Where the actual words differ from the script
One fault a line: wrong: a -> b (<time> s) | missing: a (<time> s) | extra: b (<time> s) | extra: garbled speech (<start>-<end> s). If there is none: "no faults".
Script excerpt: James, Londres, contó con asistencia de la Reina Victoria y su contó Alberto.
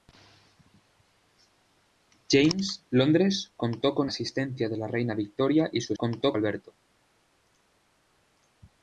no faults